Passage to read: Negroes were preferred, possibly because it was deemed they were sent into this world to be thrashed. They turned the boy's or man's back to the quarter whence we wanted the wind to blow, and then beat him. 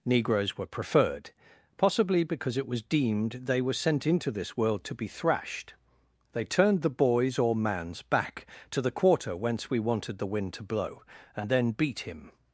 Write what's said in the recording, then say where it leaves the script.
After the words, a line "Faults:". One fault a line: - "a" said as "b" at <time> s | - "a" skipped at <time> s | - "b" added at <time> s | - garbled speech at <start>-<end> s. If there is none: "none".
Negroes were preferred, possibly because it was deemed they were sent into this world to be thrashed. They turned the boy's or man's back to the quarter whence we wanted the wind to blow, and then beat him.
Faults:
none